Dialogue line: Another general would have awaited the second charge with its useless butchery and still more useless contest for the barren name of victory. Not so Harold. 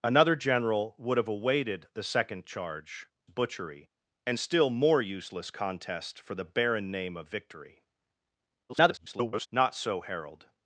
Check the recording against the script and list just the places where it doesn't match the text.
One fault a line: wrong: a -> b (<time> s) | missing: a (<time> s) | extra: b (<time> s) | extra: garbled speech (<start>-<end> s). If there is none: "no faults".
missing: with its useless (3.0 s)
extra: garbled speech (8.7-9.5 s)